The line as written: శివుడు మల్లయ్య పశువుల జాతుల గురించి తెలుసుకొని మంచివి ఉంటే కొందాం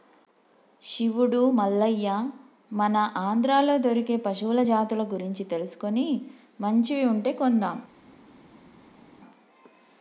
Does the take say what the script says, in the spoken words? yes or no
no